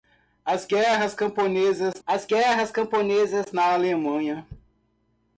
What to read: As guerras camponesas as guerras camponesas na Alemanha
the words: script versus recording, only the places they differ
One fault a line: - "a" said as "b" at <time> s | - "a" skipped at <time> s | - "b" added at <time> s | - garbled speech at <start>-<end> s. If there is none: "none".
none